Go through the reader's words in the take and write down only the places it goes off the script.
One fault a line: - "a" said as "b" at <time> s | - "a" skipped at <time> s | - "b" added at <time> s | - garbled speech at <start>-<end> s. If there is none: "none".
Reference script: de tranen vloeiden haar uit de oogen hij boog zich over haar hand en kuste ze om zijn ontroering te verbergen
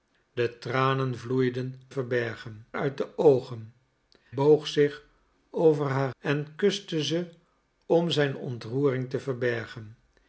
- "haar" said as "verbergen" at 1.9 s
- "hij" skipped at 3.7 s
- "hand" skipped at 6.1 s